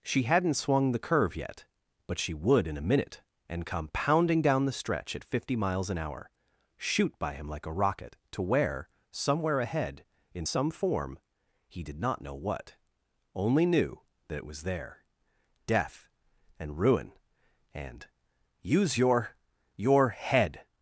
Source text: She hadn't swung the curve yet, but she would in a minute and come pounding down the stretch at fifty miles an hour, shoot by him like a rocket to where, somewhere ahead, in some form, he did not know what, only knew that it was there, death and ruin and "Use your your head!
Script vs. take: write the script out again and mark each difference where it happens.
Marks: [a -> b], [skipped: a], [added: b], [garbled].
She hadn't swung the curve yet, but she would in a minute and come pounding down the stretch at fifty miles an hour, shoot by him like a rocket to where, somewhere ahead, in some form, he did not know what, only knew that it was there, death and ruin and "Use your your head!